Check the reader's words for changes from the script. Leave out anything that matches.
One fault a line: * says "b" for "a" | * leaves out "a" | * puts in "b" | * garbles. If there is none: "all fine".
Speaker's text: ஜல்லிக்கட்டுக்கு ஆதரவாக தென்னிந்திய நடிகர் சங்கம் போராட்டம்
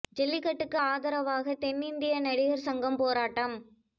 all fine